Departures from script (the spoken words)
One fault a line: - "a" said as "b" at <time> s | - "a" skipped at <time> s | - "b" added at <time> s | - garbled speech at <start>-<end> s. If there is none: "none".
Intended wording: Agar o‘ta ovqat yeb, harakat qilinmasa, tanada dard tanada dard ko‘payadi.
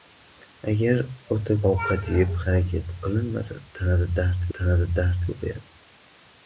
none